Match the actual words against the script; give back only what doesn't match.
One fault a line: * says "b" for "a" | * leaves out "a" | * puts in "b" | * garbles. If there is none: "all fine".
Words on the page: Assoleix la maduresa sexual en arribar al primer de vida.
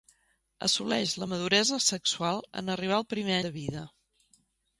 all fine